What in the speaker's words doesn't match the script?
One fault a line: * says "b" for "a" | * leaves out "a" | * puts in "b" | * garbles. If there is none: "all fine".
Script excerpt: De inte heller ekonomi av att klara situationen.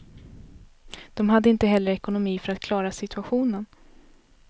* puts in "hade"
* says "för" for "av"